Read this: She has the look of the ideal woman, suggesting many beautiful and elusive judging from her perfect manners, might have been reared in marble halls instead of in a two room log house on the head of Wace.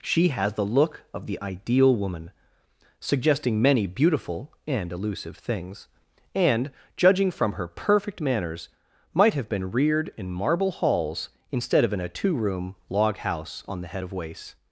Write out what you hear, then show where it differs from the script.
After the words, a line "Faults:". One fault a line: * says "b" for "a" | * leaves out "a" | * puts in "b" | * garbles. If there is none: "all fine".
She has the look of the ideal woman, suggesting many beautiful and elusive things, and judging from her perfect manners, might have been reared in marble halls instead of in a two room log house on the head of Wace.
Faults:
* puts in "things and"